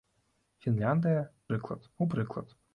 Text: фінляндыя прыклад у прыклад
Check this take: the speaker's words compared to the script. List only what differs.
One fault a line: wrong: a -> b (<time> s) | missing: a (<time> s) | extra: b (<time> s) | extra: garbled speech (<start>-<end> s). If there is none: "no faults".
no faults